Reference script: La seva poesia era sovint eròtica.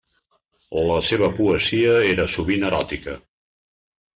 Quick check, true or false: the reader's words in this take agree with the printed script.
true